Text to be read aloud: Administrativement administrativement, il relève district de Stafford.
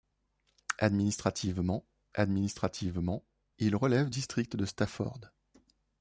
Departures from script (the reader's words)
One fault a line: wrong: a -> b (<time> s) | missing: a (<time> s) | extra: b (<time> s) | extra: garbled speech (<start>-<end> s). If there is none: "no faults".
no faults